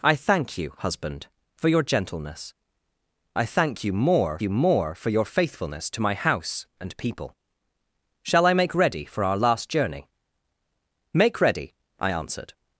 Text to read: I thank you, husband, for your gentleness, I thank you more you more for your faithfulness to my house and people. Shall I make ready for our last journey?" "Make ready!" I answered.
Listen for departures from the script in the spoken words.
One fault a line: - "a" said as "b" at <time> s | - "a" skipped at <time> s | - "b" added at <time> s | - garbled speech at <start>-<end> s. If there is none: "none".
none